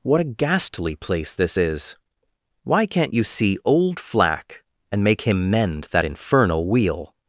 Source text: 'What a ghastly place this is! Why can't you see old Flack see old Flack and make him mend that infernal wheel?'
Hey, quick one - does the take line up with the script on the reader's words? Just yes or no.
no